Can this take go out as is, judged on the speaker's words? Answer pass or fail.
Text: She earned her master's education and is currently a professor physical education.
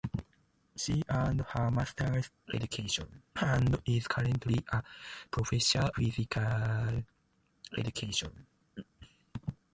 pass